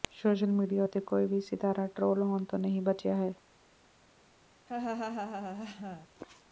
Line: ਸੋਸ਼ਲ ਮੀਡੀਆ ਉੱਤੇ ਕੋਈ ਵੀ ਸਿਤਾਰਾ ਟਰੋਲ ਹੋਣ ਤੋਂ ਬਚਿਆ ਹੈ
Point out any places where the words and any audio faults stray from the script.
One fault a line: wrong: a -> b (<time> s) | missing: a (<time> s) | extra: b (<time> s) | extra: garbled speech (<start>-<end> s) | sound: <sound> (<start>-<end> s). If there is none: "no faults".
extra: ਨਹੀਂ (2.6 s)
sound: laugh (4.7-6.1 s)